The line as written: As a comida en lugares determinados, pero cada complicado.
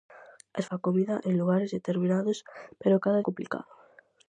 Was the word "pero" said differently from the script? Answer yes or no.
no